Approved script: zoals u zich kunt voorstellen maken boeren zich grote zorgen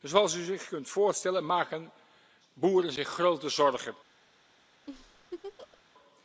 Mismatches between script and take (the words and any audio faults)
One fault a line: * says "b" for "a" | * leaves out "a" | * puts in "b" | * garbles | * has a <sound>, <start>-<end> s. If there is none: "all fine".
* has a laugh, 4.9-5.8 s